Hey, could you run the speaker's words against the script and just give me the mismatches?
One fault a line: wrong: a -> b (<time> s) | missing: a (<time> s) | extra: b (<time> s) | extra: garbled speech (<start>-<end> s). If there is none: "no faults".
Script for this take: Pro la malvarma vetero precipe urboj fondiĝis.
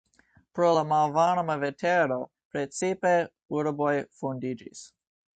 no faults